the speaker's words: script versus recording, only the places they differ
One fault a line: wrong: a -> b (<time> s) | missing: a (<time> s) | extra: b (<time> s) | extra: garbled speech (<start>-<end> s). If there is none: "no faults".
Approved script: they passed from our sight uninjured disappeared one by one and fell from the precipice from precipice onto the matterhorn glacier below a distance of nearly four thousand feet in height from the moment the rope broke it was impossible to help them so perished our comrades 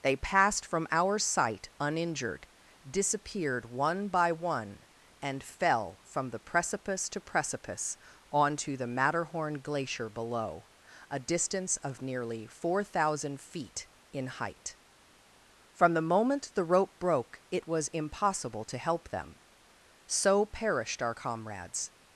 wrong: from -> to (7.1 s)